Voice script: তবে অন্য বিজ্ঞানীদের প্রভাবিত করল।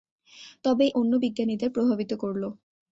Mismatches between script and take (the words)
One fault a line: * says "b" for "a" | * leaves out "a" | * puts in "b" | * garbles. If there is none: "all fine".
all fine